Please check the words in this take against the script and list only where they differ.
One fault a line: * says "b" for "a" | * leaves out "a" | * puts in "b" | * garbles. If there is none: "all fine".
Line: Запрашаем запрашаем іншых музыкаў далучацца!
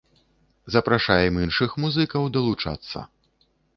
* leaves out "запрашаем"